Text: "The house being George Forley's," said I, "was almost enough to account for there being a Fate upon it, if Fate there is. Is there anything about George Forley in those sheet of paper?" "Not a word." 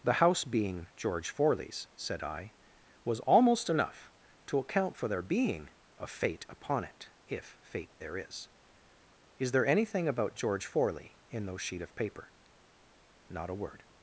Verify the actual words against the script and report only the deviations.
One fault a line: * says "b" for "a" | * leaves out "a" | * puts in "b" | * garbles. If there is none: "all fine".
all fine